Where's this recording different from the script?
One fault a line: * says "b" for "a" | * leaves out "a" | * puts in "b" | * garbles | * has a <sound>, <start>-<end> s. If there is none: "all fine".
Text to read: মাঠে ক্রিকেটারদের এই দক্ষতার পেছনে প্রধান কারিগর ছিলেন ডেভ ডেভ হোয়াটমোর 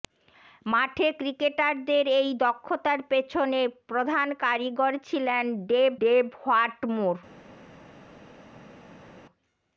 all fine